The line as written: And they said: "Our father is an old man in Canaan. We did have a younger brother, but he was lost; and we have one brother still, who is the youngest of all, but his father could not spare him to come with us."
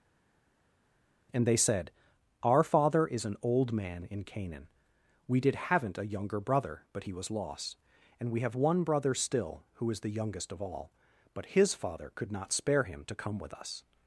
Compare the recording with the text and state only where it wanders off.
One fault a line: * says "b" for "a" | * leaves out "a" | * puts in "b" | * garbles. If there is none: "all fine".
* says "haven't" for "have"